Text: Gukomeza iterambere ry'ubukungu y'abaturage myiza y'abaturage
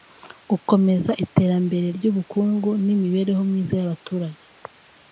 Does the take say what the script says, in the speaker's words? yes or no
no